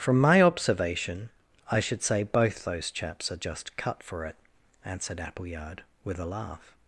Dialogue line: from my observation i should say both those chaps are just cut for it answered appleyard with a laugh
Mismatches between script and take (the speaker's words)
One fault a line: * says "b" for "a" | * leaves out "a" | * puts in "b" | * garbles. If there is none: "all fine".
all fine